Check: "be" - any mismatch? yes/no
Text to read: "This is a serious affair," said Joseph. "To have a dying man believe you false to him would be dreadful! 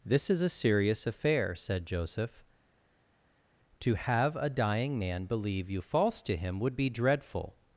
no